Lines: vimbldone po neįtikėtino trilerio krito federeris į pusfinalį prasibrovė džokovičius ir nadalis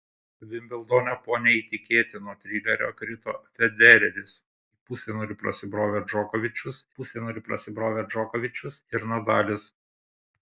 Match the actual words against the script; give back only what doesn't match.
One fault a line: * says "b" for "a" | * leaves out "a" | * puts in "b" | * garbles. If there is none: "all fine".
* puts in "pusfinalį prasibrovė džokovičius"